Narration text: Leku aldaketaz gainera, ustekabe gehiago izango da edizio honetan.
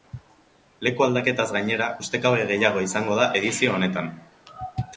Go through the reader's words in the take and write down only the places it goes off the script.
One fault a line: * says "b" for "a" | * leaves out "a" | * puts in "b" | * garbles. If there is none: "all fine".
all fine